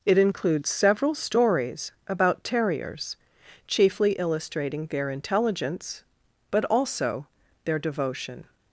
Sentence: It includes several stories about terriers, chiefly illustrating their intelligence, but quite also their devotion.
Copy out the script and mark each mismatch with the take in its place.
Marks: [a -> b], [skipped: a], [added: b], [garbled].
It includes several stories about terriers, chiefly illustrating their intelligence, but [skipped: quite] also their devotion.